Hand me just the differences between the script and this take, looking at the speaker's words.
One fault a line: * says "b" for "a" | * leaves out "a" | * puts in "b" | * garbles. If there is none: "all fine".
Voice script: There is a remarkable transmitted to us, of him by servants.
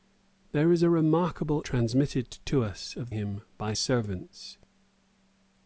all fine